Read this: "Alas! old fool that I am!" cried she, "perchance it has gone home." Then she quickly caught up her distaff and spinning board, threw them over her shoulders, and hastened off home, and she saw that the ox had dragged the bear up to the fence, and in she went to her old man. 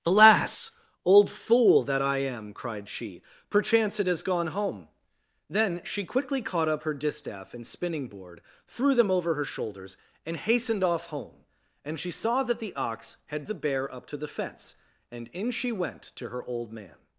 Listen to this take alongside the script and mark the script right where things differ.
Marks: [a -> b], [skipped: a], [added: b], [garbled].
"Alas! old fool that I am!" cried she, "perchance it has gone home." Then she quickly caught up her distaff and spinning board, threw them over her shoulders, and hastened off home, and she saw that the ox had [skipped: dragged] the bear up to the fence, and in she went to her old man.